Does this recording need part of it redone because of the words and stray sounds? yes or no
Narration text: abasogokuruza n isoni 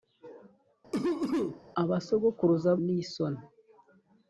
yes